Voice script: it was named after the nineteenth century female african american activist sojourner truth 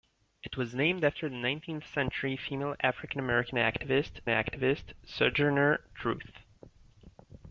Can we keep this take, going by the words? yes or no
no